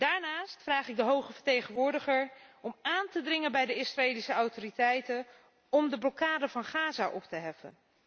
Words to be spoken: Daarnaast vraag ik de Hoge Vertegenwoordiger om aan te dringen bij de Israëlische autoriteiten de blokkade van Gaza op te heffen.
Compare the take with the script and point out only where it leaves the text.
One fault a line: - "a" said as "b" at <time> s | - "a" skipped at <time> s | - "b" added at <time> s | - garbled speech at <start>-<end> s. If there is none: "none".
- "om" added at 5.7 s